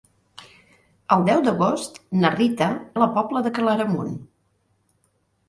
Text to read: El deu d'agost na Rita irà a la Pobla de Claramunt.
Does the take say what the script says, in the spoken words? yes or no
no